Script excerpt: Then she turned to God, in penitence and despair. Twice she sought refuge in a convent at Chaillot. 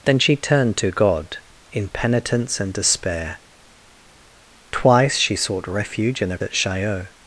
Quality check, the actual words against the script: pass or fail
fail